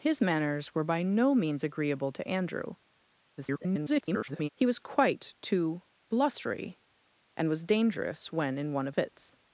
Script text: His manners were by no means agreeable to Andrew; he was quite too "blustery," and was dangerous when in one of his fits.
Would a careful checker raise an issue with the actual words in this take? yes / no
yes